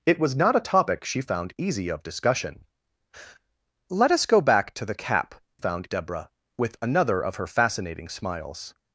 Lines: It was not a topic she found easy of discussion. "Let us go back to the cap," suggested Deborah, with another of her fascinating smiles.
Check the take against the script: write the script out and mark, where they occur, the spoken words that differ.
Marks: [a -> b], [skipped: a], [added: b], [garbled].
It was not a topic she found easy of discussion. "Let us go back to the cap," [suggested -> found] Deborah, with another of her fascinating smiles.